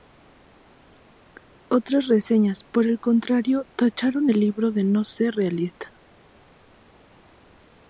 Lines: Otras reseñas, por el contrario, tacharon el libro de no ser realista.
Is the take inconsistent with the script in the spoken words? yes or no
no